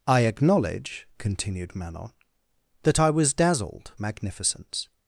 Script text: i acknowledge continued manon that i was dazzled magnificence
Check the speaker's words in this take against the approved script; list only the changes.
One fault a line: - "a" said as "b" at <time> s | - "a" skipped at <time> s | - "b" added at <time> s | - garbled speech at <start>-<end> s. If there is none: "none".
none